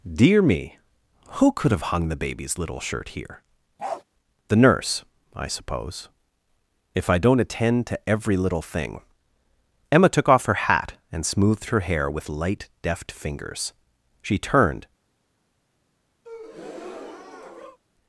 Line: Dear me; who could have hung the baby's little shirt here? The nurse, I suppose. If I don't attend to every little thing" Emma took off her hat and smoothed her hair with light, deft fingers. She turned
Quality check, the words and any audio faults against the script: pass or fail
fail